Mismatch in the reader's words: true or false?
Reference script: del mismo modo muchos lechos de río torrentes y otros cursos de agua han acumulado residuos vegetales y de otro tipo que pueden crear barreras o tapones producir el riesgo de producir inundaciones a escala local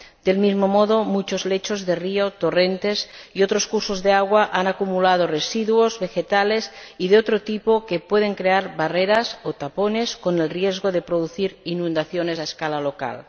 true